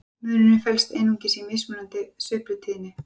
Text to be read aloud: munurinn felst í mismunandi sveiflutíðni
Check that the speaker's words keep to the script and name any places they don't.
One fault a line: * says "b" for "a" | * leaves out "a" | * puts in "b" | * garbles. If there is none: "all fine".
* puts in "einungis"